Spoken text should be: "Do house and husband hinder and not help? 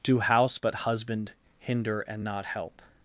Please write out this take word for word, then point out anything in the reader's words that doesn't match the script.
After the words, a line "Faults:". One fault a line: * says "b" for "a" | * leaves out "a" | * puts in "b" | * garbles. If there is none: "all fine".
"Do house but husband hinder and not help?
Faults:
* says "but" for "and"